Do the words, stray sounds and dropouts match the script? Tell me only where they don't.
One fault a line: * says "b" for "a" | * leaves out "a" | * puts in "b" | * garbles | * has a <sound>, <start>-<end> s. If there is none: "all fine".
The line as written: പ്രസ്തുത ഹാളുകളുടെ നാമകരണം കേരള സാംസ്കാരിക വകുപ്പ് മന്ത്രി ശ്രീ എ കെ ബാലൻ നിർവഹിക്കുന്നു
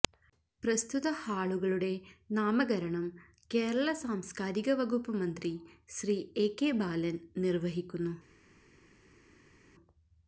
all fine